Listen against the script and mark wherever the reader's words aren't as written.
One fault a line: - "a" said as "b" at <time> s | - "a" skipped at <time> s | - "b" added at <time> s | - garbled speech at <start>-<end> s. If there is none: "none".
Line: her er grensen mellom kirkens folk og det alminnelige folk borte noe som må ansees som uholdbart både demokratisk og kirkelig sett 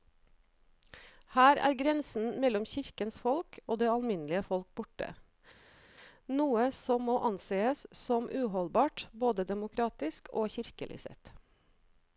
none